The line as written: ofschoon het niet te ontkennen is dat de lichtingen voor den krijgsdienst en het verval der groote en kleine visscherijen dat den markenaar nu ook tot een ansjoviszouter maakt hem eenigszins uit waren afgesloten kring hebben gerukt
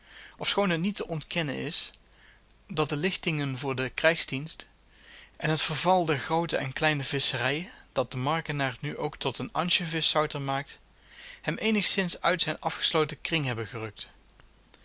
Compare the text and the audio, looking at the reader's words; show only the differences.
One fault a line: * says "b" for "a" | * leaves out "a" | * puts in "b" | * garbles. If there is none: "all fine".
* says "zijn" for "waren"